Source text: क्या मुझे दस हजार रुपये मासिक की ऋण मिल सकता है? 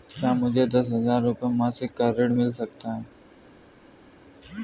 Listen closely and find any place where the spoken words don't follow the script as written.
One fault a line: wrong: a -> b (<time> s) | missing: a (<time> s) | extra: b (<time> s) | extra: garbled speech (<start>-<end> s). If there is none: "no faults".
wrong: की -> का (1.9 s)